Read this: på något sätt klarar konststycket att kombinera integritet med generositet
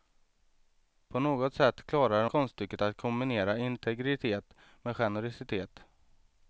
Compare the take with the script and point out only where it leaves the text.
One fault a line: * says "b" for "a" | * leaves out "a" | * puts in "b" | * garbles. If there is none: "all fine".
all fine